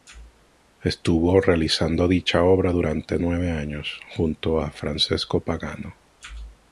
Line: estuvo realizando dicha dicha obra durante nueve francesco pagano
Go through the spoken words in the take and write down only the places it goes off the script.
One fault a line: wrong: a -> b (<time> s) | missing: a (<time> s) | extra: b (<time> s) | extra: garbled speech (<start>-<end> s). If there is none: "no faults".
missing: dicha (2.4 s)
extra: años junto a (3.5 s)